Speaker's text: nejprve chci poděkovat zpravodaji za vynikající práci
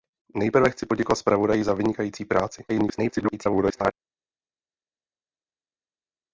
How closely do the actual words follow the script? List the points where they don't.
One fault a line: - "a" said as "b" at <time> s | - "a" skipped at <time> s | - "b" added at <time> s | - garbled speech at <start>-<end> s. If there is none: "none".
- garbled speech at 2.7-3.9 s